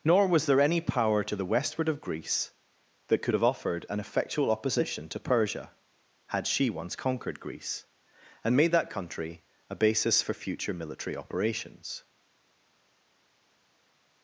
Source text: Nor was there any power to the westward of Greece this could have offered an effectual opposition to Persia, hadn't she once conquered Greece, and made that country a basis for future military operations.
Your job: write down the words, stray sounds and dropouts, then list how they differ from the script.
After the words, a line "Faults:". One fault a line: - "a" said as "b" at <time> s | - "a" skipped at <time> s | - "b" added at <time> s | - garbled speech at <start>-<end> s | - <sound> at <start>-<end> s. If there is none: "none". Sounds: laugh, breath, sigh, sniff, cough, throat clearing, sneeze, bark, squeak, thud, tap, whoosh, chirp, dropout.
Nor was there any power to the westward of Greece that could have offered an effectual opposition to Persia, had she once conquered Greece, and made that country a basis for future military operations.
Faults:
- "this" said as "that" at 3.1 s
- "hadn't" said as "had" at 6.3 s